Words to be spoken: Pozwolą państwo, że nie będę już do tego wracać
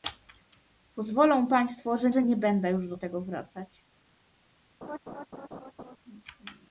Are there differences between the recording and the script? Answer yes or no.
yes